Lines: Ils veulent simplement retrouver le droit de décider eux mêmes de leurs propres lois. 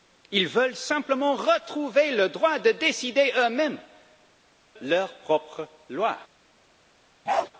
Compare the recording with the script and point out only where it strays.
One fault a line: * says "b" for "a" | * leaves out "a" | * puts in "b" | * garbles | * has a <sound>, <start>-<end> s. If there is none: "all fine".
* leaves out "de"
* has a bark, 7.3-7.5 s